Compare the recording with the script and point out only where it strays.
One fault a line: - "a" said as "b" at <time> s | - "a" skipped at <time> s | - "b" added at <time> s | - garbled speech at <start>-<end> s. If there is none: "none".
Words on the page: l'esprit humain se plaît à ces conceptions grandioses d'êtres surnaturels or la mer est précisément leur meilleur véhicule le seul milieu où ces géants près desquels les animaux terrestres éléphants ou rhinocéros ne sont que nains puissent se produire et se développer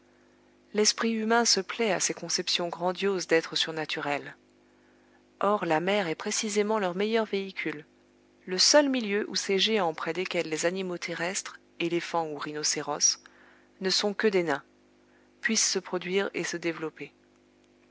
- "des" added at 14.3 s